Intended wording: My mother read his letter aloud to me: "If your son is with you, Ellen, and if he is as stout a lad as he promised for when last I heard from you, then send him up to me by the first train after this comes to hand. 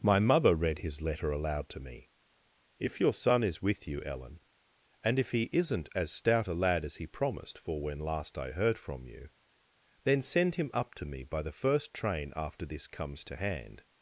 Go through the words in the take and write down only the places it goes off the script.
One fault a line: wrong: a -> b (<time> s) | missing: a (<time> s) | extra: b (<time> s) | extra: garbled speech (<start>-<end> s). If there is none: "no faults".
wrong: is -> isn't (5.5 s)